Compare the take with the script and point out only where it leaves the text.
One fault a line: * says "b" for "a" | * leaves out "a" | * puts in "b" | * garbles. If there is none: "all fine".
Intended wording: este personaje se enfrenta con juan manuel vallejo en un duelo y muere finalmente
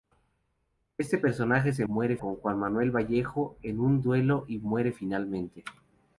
* says "muere" for "enfrenta"